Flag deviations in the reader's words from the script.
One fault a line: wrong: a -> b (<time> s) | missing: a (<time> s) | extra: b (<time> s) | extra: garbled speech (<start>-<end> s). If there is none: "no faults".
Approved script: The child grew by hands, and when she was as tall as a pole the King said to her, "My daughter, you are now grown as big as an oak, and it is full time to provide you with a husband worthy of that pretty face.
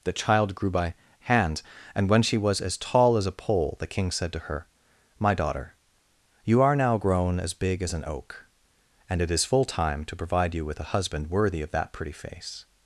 wrong: hands -> hand (1.2 s)